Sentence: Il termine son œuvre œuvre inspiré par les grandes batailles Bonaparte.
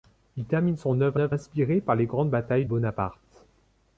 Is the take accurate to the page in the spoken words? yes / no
yes